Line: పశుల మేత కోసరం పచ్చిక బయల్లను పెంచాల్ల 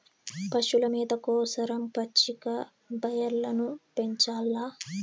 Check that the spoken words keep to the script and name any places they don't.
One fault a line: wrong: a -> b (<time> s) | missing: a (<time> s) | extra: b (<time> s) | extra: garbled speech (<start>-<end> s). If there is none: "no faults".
no faults